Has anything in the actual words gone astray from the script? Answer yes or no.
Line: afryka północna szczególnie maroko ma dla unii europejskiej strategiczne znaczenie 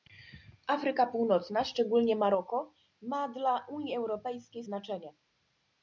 yes